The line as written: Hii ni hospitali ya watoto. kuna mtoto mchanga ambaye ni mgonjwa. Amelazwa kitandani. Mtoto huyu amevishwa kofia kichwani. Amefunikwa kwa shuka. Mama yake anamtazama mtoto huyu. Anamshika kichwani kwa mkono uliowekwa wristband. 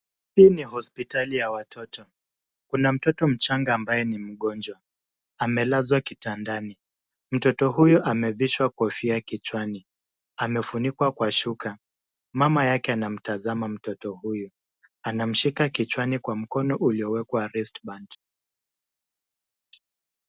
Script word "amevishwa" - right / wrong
right